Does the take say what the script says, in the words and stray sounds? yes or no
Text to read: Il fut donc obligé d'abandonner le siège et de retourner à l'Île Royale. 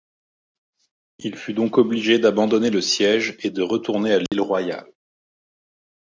no